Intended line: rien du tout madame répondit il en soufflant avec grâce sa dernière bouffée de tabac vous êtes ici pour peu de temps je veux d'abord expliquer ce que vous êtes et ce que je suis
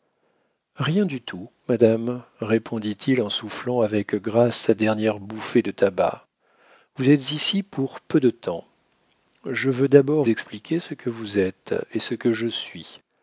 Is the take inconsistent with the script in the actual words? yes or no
no